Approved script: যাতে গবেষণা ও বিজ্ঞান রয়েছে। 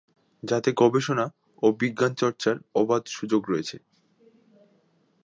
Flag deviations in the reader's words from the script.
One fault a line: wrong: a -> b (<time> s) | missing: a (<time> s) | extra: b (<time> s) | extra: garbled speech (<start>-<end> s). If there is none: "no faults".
extra: চর্চার অবাধ সুযোগ (2.1 s)